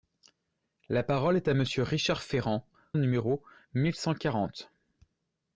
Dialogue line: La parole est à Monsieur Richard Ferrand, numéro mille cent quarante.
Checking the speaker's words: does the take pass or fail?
pass